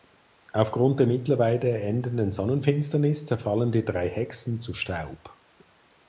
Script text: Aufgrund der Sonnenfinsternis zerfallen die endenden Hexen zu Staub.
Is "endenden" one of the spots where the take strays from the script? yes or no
yes